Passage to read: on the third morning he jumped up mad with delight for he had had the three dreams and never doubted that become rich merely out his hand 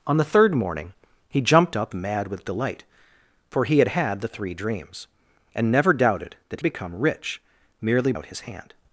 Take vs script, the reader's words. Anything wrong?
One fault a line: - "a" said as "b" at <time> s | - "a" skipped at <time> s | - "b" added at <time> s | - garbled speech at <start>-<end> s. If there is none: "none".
none